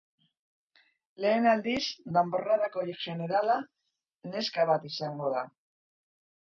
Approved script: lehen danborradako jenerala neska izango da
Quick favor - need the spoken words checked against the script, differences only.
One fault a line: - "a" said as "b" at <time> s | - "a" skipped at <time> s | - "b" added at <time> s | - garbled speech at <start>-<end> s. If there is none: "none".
- "aldiz" added at 1.5 s
- "bat" added at 4.7 s